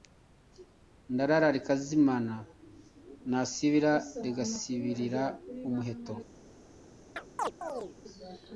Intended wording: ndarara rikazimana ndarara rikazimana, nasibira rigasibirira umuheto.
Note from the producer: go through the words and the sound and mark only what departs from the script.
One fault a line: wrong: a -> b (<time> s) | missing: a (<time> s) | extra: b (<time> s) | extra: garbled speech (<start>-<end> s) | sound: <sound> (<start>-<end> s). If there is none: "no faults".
missing: ndarara rikazimana (2.4 s)
sound: chirp (7.2-8.0 s)